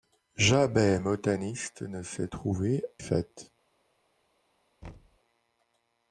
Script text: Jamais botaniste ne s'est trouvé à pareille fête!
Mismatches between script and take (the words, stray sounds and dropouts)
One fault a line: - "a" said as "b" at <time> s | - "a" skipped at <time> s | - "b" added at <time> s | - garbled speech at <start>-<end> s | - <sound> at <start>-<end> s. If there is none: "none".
- "à pareille" skipped at 2.9 s
- thud at 4.8-5.2 s